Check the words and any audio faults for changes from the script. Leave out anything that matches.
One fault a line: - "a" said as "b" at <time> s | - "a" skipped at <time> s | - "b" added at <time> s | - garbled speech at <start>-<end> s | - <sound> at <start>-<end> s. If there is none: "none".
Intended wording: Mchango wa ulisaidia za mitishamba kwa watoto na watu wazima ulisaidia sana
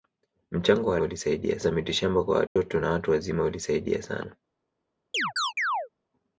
- dropout at 2.5-2.6 s
- chirp at 5.1-5.9 s